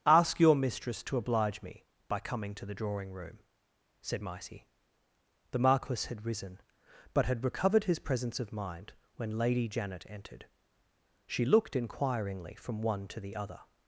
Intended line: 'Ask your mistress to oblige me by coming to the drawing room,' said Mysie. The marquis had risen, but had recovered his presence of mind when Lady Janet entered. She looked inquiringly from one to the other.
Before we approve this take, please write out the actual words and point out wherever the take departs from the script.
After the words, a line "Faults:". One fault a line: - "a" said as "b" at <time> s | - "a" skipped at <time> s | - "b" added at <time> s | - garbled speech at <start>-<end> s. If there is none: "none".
'Ask your mistress to oblige me by coming to the drawing room,' said Mysie. The marquis had risen, but had recovered his presence of mind when Lady Janet entered. She looked inquiringly from one to the other.
Faults:
none